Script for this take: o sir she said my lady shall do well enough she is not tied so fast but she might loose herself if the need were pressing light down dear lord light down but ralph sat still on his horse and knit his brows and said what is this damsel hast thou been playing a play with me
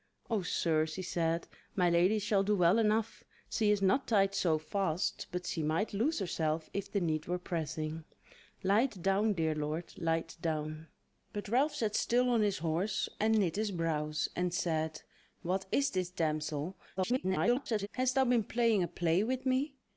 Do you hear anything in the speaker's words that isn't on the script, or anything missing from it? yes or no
yes